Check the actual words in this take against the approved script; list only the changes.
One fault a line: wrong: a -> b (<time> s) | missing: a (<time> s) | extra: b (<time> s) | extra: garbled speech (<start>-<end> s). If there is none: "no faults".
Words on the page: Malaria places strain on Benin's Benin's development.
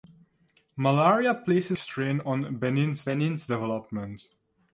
no faults